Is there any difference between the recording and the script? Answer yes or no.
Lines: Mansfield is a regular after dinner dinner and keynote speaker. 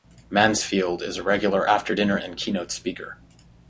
yes